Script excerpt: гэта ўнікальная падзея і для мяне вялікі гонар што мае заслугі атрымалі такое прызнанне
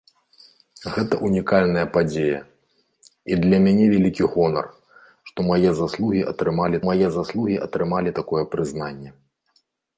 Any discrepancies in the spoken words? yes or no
yes